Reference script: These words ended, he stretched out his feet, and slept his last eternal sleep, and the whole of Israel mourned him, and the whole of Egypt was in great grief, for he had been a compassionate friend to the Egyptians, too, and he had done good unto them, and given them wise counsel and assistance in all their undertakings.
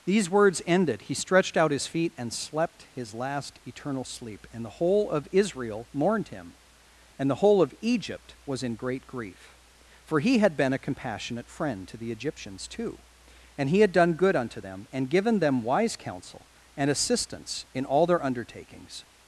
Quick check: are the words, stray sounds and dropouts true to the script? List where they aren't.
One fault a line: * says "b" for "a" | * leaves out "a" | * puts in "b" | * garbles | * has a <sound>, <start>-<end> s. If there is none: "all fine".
all fine